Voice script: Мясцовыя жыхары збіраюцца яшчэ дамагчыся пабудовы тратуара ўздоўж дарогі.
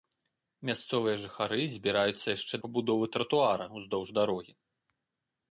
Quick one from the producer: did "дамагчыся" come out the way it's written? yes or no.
no